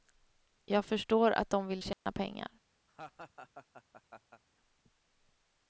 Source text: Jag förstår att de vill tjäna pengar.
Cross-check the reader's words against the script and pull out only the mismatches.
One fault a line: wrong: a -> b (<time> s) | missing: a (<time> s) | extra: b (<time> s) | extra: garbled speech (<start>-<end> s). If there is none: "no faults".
no faults